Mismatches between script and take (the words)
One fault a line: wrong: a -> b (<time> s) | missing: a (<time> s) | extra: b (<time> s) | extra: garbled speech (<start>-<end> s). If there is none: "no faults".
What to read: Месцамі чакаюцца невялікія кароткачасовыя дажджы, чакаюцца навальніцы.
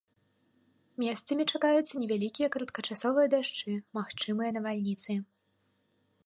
wrong: чакаюцца -> магчымыя (4.0 s)